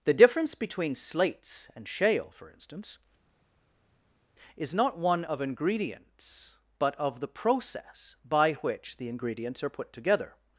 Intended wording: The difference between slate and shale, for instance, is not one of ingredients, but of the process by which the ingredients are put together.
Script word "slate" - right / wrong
wrong